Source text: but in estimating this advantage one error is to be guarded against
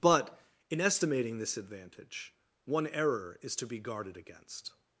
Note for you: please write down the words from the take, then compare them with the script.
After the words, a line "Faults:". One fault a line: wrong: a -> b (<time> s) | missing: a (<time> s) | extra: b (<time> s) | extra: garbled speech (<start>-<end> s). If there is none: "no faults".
but in estimating this advantage one error is to be guarded against
Faults:
no faults